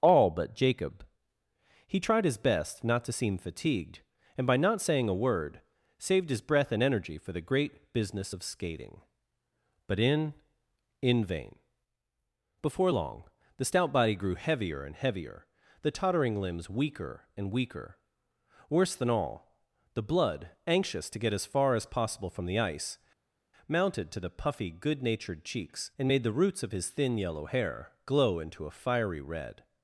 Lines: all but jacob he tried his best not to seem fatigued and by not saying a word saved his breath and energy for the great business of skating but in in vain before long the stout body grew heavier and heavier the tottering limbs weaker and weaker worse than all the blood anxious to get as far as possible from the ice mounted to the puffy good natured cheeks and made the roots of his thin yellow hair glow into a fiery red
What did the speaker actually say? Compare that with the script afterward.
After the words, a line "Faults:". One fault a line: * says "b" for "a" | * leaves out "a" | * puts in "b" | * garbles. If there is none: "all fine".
all but jacob he tried his best not to seem fatigued and by not saying a word saved his breath and energy for the great business of skating but in in vain before long the stout body grew heavier and heavier the tottering limbs weaker and weaker worse than all the blood anxious to get as far as possible from the ice mounted to the puffy good natured cheeks and made the roots of his thin yellow hair glow into a fiery red
Faults:
all fine